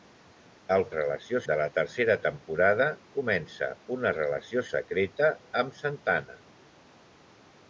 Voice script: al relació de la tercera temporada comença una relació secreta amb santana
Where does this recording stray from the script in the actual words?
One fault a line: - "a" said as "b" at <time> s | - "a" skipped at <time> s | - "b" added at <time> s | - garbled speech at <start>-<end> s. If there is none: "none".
none